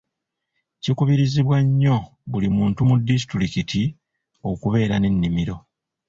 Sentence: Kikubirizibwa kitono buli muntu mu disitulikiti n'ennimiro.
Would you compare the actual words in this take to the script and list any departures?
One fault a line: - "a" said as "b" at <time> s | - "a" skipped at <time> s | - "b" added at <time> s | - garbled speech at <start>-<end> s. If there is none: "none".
- "kitono" said as "nnyo" at 1.6 s
- "okubeera" added at 4.5 s